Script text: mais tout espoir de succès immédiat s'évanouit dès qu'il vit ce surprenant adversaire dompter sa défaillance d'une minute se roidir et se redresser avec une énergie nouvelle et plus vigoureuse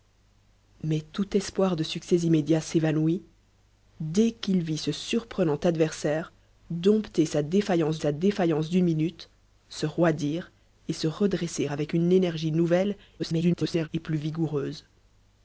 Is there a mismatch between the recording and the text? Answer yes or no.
yes